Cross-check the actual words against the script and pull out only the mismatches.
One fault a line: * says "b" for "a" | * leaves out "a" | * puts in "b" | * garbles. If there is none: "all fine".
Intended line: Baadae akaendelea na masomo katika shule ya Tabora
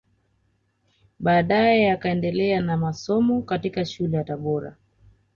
all fine